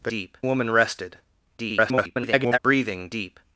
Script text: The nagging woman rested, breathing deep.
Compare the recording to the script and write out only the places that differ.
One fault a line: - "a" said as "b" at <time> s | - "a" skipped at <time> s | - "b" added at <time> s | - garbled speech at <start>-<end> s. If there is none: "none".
- "nagging" said as "deep" at 0.1 s
- garbled speech at 1.6-2.6 s